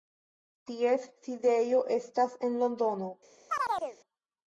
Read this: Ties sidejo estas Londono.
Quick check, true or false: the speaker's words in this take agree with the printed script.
false